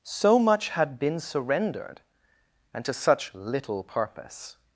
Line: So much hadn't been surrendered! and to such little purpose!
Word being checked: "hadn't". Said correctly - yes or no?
no